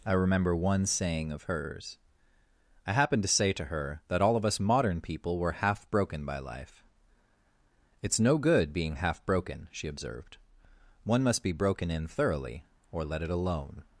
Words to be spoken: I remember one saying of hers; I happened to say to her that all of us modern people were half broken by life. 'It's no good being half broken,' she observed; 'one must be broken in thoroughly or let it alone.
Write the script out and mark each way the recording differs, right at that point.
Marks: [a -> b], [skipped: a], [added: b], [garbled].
I remember one saying of hers; I happened to say to her that all of us modern people were half broken by life. 'It's no good being half broken,' she observed; 'one must be broken in thoroughly or let it alone.